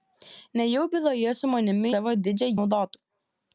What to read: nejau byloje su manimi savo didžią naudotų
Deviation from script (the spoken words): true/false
false